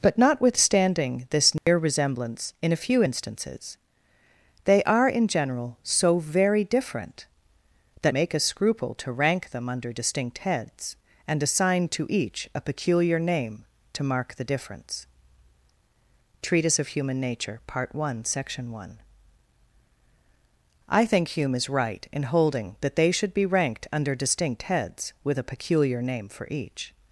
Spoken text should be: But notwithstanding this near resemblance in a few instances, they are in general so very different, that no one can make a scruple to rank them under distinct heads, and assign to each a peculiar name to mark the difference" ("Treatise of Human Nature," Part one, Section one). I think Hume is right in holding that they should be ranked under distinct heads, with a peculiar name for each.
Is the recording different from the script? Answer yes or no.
yes